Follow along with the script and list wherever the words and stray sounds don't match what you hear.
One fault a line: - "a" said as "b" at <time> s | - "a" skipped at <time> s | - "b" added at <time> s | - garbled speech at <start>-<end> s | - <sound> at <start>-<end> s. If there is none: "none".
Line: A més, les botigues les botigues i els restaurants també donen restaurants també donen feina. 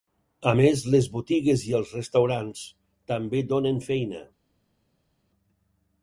- "les botigues" skipped at 1.7 s
- "restaurants també donen" skipped at 3.9 s